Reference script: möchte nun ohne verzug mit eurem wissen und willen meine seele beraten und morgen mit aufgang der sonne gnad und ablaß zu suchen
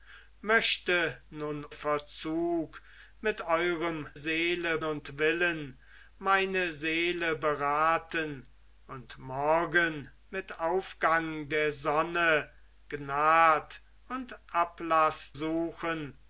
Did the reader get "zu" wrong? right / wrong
wrong